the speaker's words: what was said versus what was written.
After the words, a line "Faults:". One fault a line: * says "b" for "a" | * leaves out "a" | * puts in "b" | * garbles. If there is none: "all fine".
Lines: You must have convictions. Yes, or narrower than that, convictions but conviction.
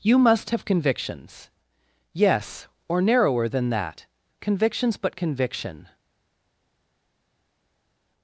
You must have convictions. Yes, or narrower than that, convictions but conviction.
Faults:
all fine